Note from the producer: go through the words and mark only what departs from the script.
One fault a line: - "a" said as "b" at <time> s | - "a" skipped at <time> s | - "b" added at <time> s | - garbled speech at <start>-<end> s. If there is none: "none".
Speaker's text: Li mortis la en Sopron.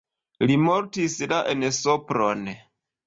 none